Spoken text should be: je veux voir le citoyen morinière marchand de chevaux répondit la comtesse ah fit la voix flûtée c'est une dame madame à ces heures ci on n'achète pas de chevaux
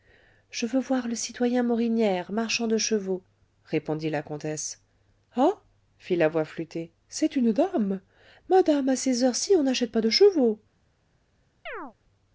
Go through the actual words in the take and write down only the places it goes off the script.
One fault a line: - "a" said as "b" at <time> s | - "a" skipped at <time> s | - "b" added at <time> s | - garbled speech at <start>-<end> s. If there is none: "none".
none